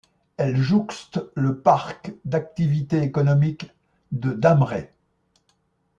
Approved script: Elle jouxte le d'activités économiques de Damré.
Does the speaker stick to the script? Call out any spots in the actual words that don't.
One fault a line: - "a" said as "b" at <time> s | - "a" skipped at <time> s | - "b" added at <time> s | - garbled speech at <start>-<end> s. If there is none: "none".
- "parc" added at 1.6 s